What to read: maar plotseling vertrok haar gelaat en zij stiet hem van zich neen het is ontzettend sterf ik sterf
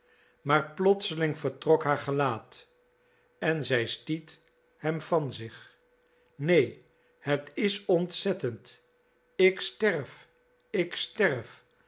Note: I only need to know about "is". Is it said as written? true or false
true